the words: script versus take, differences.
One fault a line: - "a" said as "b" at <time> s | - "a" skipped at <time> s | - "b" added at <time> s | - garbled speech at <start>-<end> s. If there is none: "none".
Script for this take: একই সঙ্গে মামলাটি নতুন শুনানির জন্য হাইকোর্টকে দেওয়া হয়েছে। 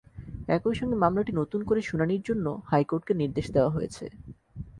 - "করে" added at 1.6 s
- "নির্দেশ" added at 3.1 s